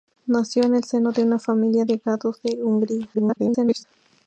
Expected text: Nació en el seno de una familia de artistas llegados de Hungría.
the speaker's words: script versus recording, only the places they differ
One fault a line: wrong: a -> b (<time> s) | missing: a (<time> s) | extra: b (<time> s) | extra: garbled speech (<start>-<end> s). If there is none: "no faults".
missing: de artistas (1.9 s)
extra: garbled speech (3.1-3.8 s)